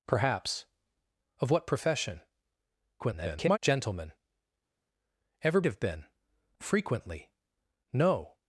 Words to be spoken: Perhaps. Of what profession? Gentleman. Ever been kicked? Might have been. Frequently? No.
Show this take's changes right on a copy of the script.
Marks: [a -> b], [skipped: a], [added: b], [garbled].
Perhaps. Of what profession? [garbled] Gentleman. Ever [skipped: been kicked? Might] have been. Frequently? No.